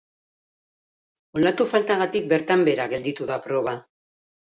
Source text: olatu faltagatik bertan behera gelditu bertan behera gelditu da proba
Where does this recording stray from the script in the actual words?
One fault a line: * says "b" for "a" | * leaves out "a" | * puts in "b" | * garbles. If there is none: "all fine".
* leaves out "bertan behera gelditu"